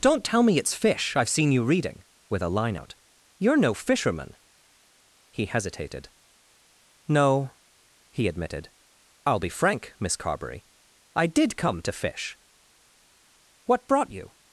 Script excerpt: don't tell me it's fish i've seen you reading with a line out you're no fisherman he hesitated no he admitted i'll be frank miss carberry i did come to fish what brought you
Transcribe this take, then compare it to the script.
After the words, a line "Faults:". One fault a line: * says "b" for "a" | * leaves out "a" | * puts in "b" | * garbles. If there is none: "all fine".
don't tell me it's fish i've seen you reading with a line out you're no fisherman he hesitated no he admitted i'll be frank miss carberry i did come to fish what brought you
Faults:
all fine